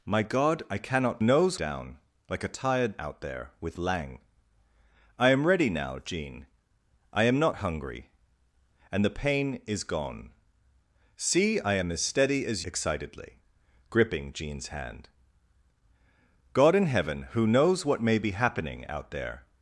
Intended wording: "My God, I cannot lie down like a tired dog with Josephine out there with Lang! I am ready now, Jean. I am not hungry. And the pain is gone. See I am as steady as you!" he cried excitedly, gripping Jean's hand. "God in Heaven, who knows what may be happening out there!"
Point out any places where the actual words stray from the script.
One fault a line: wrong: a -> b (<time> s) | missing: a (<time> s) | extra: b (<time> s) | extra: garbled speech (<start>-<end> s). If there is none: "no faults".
wrong: lie -> knows (1.2 s)
missing: dog with Josephine (3.0 s)
missing: you he cried (12.6 s)